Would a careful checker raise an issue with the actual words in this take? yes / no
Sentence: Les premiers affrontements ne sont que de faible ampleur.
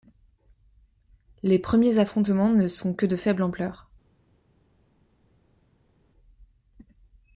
no